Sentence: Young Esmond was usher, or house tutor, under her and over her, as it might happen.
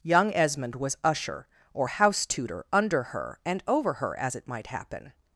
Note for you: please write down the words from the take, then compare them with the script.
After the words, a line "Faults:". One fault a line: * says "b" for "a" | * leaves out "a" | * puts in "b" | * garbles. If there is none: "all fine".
Young Esmond was usher, or house tutor, under her and over her, as it might happen.
Faults:
all fine